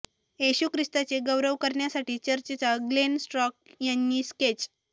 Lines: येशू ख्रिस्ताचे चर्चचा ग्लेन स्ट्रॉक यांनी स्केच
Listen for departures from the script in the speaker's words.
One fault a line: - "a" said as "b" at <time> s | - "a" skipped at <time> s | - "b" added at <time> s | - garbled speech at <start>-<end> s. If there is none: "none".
- "गौरव करण्यासाठी" added at 1.2 s